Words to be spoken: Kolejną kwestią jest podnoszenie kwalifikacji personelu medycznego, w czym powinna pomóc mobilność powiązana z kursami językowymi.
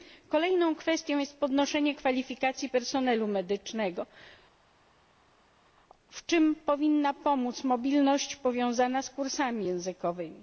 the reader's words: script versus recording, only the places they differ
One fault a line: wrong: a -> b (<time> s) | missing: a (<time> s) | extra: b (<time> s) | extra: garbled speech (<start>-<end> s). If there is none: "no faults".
no faults